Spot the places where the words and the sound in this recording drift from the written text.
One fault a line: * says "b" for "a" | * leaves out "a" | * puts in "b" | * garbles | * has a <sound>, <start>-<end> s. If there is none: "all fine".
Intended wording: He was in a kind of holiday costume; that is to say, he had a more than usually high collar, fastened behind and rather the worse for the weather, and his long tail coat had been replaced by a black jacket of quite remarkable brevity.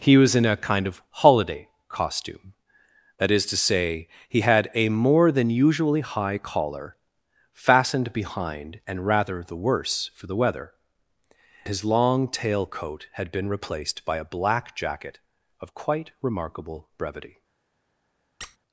* leaves out "and"
* has a squeak, 18.4-18.6 s